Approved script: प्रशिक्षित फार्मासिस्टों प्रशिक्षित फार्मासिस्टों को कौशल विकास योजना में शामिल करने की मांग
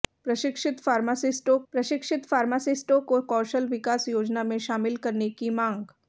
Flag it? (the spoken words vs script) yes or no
no